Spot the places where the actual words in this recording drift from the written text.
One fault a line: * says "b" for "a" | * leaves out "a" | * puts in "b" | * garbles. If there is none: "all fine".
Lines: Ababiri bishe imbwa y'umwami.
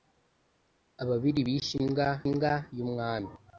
* puts in "imbwa"